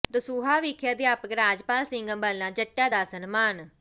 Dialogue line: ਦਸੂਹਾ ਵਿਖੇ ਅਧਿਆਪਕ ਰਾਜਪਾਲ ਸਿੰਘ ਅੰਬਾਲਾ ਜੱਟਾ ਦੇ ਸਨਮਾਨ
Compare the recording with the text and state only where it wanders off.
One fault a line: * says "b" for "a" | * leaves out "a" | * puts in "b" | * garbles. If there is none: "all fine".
* says "ਦਾ" for "ਦੇ"